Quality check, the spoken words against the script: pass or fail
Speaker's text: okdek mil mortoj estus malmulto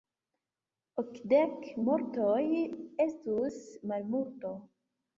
fail